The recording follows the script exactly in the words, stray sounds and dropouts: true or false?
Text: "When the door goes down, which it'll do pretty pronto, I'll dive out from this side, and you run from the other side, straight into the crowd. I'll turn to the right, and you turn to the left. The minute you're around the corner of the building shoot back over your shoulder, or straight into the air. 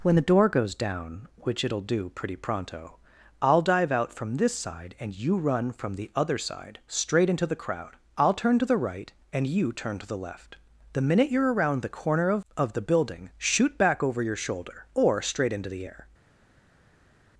false